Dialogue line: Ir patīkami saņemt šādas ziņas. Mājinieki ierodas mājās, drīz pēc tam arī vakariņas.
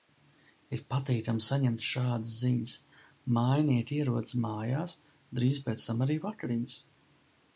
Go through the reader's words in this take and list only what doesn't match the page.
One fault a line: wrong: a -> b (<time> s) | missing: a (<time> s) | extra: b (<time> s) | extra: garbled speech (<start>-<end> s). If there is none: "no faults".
no faults